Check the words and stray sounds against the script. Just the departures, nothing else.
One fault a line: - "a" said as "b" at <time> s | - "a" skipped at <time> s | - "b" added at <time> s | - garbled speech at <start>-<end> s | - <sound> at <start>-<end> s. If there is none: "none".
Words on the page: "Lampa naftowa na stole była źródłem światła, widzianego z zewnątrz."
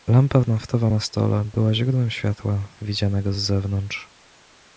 none